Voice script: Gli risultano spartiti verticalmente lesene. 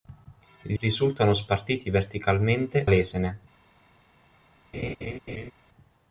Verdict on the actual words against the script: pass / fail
pass